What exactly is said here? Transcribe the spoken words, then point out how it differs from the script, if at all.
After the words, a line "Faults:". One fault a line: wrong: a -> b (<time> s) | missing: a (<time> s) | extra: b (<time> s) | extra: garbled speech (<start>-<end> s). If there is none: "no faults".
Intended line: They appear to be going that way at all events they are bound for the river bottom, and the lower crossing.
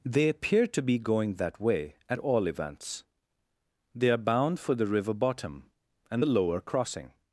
They appear to be going that way at all events they are bound for the river bottom, and the lower crossing.
Faults:
no faults